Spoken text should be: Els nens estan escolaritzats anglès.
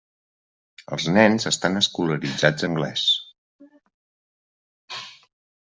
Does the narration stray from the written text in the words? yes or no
no